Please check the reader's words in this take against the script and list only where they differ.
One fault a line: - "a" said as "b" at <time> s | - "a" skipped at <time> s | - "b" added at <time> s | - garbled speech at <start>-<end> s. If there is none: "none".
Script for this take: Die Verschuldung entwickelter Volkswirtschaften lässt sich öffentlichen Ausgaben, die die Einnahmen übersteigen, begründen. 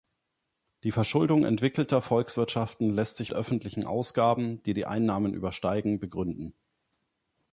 none